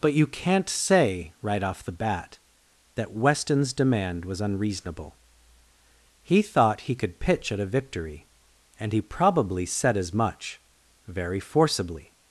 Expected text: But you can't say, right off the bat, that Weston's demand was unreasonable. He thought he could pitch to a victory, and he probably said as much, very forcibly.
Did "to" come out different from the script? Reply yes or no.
yes